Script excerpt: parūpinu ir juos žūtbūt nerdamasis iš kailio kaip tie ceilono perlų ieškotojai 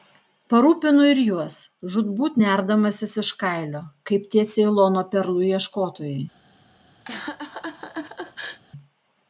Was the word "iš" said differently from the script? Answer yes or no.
no